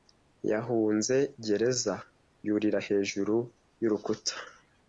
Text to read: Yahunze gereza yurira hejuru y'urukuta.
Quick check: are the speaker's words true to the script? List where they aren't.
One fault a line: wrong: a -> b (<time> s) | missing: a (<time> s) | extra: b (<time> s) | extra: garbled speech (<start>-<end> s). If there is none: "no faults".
no faults